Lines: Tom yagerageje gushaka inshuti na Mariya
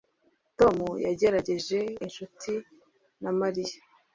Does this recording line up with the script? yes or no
no